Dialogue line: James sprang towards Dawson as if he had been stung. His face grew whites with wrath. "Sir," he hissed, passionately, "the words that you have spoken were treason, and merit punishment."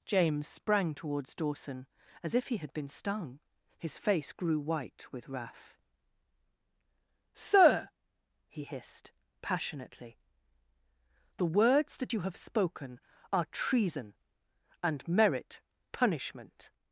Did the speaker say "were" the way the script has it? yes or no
no